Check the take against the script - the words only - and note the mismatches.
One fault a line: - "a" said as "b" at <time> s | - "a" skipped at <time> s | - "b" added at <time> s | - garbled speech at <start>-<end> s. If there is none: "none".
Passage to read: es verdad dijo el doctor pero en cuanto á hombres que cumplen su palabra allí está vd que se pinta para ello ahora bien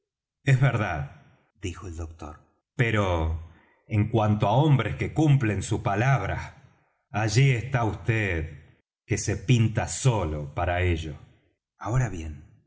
- "solo" added at 9.9 s